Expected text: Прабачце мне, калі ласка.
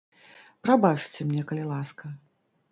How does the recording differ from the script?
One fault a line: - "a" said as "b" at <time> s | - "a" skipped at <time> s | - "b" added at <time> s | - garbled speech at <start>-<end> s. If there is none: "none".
none